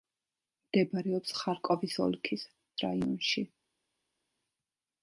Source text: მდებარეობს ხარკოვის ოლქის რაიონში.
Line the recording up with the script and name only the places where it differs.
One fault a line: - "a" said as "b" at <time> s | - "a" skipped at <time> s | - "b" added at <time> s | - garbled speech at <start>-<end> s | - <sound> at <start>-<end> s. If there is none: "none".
none